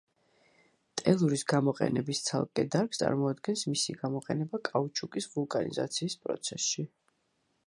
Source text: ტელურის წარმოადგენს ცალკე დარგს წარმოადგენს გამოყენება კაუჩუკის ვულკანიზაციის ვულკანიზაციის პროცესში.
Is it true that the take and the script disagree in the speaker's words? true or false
true